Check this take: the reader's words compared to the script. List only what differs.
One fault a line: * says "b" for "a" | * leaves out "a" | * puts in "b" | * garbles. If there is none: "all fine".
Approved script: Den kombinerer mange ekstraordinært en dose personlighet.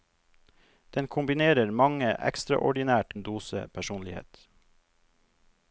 all fine